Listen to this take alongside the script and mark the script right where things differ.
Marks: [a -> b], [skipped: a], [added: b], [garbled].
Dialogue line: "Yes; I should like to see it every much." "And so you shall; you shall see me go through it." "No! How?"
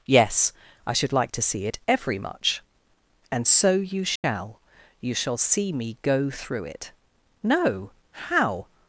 "Yes; I should like to see it every much." "And so you shall; you shall see me go through it." "No! How?"